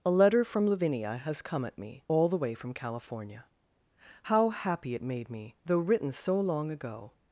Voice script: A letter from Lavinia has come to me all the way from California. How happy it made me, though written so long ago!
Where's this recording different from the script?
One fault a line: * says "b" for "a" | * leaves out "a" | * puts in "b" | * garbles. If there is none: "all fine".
* says "at" for "to"